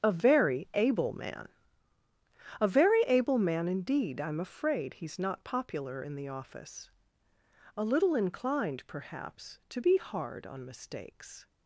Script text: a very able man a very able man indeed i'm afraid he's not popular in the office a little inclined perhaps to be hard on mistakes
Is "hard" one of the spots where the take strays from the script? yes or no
no